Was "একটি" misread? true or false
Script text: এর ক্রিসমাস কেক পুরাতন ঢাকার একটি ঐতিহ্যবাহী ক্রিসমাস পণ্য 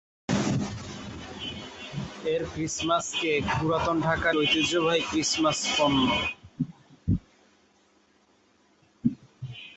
true